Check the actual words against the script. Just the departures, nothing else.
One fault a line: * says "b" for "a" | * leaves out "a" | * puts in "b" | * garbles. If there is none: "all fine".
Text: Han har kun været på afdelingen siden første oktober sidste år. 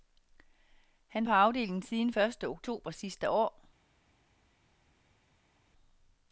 * leaves out "har kun været"